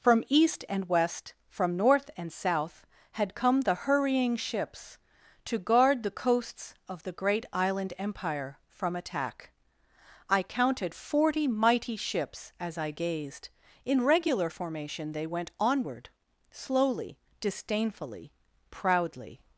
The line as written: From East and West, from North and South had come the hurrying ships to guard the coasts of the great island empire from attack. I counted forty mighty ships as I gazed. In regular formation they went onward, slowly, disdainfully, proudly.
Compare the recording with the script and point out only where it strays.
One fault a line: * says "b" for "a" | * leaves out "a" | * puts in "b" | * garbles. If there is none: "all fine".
all fine